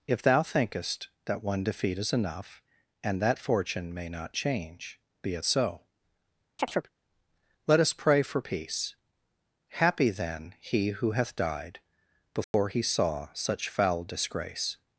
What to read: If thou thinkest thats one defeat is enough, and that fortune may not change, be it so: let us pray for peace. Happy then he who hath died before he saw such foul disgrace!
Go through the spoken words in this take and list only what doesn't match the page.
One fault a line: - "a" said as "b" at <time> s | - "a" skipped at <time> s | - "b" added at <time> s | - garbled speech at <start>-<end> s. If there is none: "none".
- "thats" said as "that" at 1.2 s